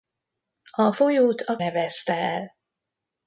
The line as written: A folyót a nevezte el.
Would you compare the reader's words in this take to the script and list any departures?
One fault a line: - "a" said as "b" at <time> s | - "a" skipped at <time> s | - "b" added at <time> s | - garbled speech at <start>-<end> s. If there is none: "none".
none